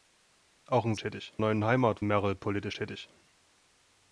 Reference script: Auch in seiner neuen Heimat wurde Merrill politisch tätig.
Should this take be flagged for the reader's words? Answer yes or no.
yes